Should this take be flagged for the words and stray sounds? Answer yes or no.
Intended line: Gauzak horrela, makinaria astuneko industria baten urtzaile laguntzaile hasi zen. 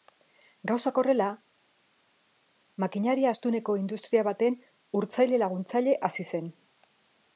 no